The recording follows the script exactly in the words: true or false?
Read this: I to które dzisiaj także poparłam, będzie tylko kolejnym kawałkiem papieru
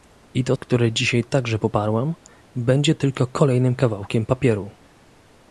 true